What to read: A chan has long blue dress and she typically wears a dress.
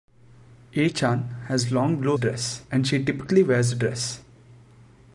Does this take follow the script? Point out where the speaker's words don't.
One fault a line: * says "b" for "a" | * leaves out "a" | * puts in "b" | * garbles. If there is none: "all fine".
all fine